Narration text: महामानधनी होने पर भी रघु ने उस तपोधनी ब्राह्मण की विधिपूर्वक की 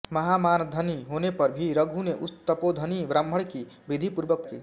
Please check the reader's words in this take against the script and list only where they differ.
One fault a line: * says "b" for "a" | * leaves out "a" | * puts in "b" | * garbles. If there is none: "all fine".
all fine